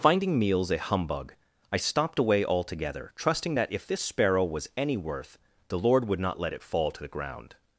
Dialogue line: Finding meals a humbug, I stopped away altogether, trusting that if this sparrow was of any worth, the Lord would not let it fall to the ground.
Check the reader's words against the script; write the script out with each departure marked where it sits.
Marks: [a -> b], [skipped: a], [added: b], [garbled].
Finding meals a humbug, I stopped away altogether, trusting that if this sparrow was [skipped: of] any worth, the Lord would not let it fall to the ground.